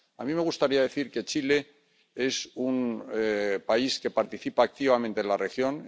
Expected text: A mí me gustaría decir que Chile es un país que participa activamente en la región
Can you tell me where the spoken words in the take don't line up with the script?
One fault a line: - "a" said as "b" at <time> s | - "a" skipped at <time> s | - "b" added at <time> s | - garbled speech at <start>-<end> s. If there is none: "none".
none